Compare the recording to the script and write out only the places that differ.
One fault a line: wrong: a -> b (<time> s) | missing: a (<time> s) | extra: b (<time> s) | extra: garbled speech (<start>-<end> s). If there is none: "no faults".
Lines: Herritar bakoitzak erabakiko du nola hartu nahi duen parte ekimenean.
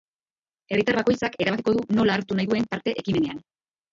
no faults